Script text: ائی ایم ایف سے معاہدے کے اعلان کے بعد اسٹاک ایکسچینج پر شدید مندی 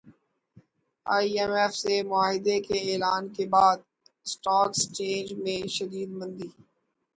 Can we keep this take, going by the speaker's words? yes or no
no